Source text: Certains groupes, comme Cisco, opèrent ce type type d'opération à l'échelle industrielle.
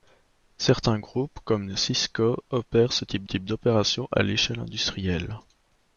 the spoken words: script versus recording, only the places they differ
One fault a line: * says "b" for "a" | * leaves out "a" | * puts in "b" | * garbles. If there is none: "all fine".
all fine